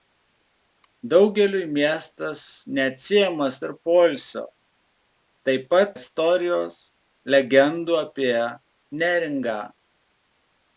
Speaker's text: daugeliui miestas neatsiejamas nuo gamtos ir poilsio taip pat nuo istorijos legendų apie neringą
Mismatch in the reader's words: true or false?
true